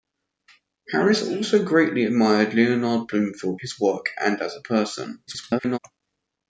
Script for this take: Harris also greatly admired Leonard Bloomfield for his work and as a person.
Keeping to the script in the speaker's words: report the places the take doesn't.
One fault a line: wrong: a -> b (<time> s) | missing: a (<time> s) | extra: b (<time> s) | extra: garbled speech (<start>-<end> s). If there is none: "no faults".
missing: for (3.6 s)
extra: garbled speech (5.3-5.8 s)